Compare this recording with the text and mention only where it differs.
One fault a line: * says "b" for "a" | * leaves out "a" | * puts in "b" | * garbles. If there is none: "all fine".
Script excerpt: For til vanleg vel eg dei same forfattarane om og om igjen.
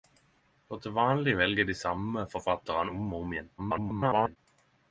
* garbles